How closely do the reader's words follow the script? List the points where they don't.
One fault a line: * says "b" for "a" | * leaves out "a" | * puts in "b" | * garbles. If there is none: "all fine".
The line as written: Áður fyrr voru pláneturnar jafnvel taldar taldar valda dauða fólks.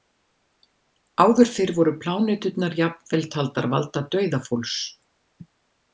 * leaves out "taldar"